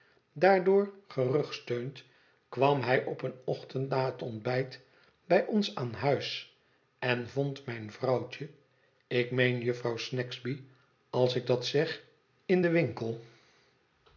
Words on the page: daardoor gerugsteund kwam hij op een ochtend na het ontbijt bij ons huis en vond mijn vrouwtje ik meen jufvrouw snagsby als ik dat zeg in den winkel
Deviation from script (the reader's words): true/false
true